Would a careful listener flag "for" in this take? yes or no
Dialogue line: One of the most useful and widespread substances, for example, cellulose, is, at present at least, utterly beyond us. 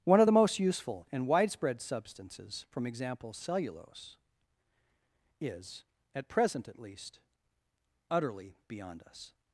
yes